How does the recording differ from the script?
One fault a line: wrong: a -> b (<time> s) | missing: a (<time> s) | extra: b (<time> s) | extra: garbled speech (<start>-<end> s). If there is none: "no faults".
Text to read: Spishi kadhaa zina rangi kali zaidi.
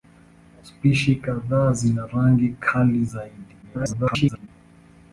extra: garbled speech (3.6-4.5 s)